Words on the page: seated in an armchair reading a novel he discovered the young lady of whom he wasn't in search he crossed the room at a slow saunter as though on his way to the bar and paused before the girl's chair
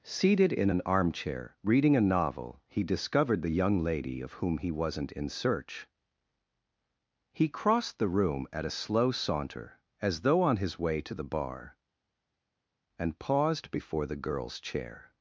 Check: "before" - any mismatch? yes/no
no